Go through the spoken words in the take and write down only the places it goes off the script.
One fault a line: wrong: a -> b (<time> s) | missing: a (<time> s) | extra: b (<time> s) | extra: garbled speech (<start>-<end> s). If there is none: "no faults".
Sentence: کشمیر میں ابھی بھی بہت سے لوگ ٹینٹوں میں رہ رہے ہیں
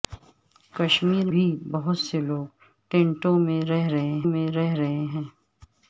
missing: میں ابھی (1.3 s)
extra: میں رہ رہے (4.3 s)